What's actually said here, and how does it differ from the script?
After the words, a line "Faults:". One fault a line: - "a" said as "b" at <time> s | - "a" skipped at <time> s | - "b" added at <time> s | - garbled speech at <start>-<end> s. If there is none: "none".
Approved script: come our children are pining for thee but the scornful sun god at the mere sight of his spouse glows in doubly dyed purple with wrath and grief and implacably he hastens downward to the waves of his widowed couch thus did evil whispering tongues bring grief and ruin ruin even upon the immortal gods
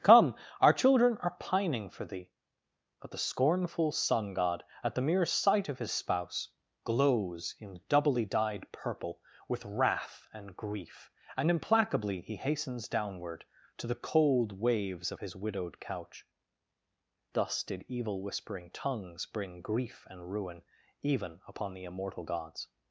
come our children are pining for thee but the scornful sun god at the mere sight of his spouse glows in doubly dyed purple with wrath and grief and implacably he hastens downward to the cold waves of his widowed couch thus did evil whispering tongues bring grief and ruin even upon the immortal gods
Faults:
- "cold" added at 14.0 s
- "ruin" skipped at 20.6 s